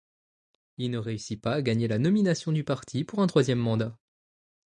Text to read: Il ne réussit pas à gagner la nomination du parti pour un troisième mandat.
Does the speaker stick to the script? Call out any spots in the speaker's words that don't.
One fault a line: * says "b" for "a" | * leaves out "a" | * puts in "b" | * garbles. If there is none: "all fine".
all fine